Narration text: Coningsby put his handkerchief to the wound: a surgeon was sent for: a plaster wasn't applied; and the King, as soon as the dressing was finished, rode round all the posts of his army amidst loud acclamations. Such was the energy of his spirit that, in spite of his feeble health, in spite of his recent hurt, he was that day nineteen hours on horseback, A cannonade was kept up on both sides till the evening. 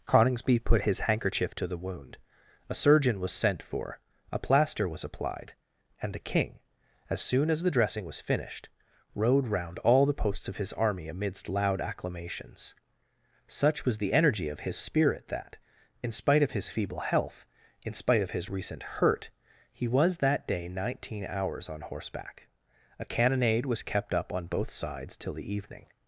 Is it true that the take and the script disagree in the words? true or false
true